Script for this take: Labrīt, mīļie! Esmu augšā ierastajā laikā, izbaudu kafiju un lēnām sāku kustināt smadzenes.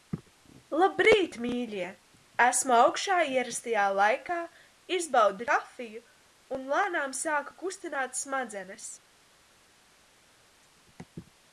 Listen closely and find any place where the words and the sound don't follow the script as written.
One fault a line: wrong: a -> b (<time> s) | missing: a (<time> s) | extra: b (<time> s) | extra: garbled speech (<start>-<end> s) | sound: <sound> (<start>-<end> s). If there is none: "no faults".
no faults